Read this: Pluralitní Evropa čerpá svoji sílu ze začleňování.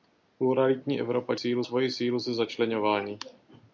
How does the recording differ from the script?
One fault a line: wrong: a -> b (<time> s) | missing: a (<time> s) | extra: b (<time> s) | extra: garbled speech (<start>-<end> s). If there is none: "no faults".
wrong: čerpá -> sílu (1.3 s)